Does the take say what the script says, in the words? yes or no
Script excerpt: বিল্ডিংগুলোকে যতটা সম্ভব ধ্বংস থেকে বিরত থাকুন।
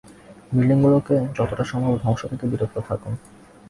yes